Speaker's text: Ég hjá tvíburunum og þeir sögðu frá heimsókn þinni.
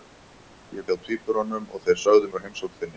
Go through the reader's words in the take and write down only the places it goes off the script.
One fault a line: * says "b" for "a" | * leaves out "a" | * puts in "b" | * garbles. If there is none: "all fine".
all fine